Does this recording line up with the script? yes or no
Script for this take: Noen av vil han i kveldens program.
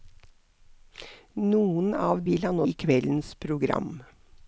yes